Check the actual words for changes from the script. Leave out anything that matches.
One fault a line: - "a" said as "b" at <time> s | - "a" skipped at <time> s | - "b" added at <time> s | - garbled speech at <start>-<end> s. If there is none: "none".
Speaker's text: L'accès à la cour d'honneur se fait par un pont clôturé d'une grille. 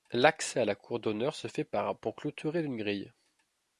none